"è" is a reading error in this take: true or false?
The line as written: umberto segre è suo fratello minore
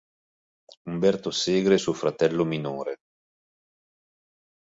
false